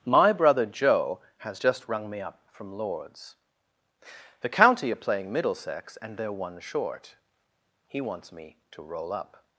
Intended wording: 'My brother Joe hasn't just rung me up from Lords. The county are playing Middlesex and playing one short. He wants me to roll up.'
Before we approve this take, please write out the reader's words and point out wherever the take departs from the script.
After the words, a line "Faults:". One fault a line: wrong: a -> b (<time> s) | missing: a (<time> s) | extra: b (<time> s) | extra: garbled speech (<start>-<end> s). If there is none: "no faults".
'My brother Joe has just rung me up from Lords. The county are playing Middlesex and they're one short. He wants me to roll up.'
Faults:
wrong: hasn't -> has (1.4 s)
wrong: playing -> they're (6.2 s)